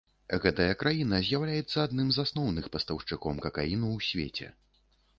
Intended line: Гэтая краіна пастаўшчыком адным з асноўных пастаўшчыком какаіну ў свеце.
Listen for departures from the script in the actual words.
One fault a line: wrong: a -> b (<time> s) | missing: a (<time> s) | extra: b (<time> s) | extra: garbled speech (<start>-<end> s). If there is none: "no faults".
wrong: пастаўшчыком -> з'яўляецца (1.3 s)